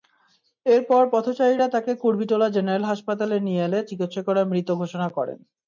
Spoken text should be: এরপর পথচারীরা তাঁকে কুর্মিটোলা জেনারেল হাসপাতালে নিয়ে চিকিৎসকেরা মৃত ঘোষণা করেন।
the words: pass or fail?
fail